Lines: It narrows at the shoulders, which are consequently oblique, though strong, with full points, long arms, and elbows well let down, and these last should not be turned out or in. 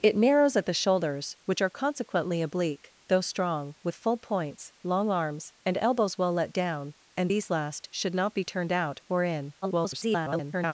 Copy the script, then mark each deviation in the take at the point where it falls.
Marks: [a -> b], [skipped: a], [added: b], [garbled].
It narrows at the shoulders, which are consequently oblique, though strong, with full points, long arms, and elbows well let down, and these last should not be turned out or in. [garbled]